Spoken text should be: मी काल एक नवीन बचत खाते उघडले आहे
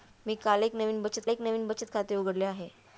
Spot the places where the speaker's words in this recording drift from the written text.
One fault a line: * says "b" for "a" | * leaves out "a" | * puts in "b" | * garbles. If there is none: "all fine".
* puts in "एक नवीन बचत"